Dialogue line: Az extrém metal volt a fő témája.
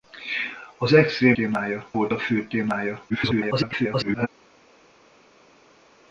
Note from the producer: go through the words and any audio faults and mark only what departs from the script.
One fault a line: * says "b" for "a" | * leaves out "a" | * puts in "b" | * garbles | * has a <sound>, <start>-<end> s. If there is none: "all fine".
* says "témája" for "metal"
* garbles